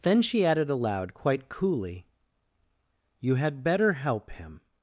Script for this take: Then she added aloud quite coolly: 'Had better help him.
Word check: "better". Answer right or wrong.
right